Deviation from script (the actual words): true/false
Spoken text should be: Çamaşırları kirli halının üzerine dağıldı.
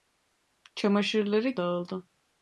true